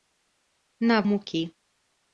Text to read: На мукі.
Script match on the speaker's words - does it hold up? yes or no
yes